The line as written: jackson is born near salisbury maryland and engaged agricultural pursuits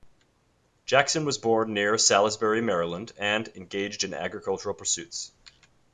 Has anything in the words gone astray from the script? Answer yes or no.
yes